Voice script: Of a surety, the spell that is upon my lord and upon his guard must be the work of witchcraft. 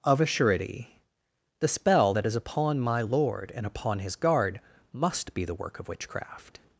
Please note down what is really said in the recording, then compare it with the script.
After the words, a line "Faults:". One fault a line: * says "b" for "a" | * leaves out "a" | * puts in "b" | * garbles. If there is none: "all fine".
Of a surety, the spell that is upon my lord and upon his guard must be the work of witchcraft.
Faults:
all fine